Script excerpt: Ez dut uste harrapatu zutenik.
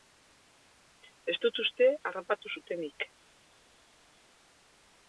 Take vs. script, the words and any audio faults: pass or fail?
pass